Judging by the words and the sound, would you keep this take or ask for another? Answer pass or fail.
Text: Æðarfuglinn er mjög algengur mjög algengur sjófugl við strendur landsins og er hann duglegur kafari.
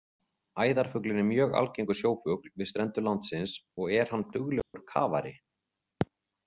fail